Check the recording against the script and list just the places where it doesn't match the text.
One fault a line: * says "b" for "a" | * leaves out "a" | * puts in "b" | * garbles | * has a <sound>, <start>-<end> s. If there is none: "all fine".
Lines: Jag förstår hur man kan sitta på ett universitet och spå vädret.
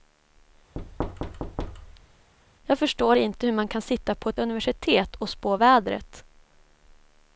* has a thud, 0.8-2.3 s
* puts in "inte"